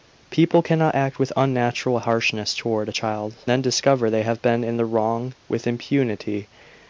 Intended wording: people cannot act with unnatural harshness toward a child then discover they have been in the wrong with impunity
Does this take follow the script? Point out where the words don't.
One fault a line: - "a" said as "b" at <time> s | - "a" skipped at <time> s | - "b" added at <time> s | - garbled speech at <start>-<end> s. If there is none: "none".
none